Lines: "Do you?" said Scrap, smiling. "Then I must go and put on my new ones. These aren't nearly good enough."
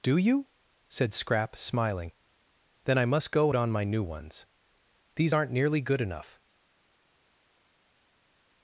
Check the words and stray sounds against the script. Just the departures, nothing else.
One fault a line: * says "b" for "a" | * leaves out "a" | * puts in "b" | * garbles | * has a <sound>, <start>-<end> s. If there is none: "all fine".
* leaves out "and put"